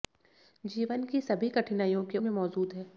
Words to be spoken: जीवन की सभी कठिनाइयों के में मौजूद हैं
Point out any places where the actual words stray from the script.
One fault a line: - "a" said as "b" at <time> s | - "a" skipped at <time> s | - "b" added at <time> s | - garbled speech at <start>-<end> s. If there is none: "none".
none